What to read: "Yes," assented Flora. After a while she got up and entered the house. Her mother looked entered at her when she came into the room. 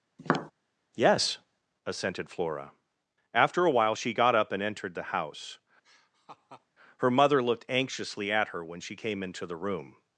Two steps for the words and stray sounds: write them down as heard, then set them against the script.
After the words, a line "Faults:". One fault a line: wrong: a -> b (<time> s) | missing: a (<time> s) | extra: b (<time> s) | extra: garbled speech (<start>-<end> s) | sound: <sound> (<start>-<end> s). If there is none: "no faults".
"Yes," assented Flora. After a while she got up and entered the house. Her mother looked anxiously at her when she came into the room.
Faults:
sound: tap (0.2-0.5 s)
sound: laugh (5.8-6.7 s)
wrong: entered -> anxiously (7.7 s)